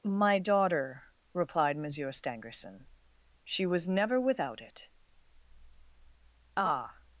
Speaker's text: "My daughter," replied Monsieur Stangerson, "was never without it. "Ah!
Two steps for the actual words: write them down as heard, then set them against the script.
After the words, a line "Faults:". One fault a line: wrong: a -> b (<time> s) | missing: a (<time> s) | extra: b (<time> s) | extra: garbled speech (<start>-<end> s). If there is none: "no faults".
"My daughter," replied Monsieur Stangerson, "she was never without it. "Ah!
Faults:
extra: she (3.4 s)